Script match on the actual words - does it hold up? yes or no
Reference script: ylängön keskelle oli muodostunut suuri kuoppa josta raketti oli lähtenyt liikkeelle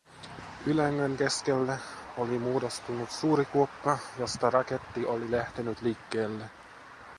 yes